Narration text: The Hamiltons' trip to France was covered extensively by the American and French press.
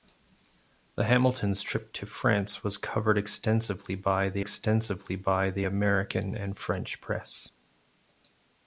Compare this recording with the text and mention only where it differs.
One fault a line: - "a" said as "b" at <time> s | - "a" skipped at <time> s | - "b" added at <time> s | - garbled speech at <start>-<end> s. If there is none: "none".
- "extensively by the" added at 4.4 s